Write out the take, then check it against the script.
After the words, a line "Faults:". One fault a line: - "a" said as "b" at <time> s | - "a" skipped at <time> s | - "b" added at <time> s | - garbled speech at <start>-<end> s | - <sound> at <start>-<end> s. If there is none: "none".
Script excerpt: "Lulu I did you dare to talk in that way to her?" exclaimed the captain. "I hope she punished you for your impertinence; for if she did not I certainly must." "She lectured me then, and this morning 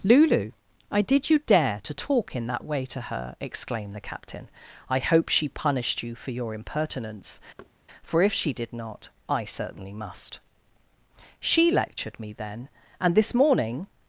"Lulu I did you dare to talk in that way to her?" exclaimed the captain. "I hope she punished you for your impertinence; for if she did not I certainly must." "She lectured me then, and this morning
Faults:
- thud at 7.6-7.7 s